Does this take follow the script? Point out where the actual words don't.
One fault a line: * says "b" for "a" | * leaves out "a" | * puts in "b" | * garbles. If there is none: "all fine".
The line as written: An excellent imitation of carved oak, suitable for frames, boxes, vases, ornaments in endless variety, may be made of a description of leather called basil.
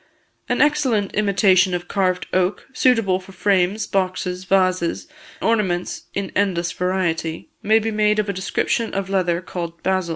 all fine